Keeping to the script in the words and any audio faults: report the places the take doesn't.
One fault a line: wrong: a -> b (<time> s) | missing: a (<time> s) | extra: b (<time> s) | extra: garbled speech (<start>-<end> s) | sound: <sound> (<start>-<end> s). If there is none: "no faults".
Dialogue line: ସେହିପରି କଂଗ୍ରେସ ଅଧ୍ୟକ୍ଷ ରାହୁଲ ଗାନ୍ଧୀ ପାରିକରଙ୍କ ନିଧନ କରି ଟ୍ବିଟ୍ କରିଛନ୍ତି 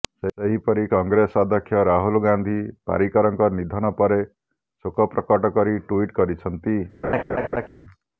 extra: ପରେ ଶୋକ ପ୍ରକଟ (4.0 s)
sound: laugh (7.0-7.7 s)